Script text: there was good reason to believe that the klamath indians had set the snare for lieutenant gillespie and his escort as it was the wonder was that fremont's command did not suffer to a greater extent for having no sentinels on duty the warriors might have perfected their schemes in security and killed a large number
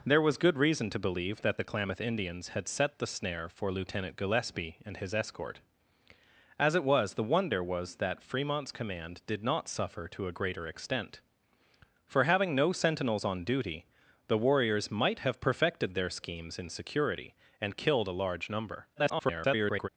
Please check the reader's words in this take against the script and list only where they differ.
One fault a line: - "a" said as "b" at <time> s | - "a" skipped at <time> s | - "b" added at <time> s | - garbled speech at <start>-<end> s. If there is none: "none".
- garbled speech at 18.9-19.9 s